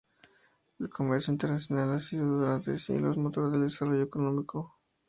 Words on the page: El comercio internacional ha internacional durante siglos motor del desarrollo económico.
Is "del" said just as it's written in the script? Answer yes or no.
yes